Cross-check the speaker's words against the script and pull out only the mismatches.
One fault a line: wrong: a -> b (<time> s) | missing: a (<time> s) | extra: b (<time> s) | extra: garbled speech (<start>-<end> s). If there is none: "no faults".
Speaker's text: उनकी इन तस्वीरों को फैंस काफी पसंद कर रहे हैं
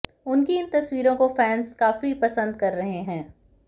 no faults